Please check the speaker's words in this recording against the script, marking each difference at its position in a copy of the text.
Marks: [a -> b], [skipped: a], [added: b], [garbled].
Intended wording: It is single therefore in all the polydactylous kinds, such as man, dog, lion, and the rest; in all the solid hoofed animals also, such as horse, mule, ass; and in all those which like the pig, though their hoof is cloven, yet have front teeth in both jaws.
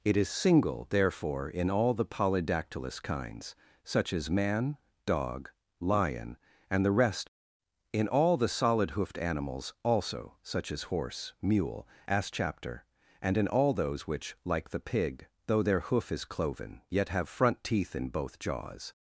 It is single therefore in all the polydactylous kinds, such as man, dog, lion, and the rest; in all the solid hoofed animals also, such as horse, mule, ass; [added: chapter] and in all those which like the pig, though their hoof is cloven, yet have front teeth in both jaws.